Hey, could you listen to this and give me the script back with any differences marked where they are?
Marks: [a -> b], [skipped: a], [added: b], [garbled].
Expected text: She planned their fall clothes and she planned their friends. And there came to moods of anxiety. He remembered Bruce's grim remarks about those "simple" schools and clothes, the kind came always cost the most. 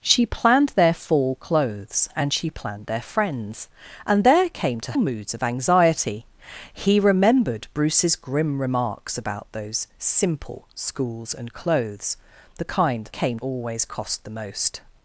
She planned their fall clothes and she planned their friends. And there came to moods of anxiety. He remembered Bruce's grim remarks about those "simple" schools and clothes, the kind came always cost the most.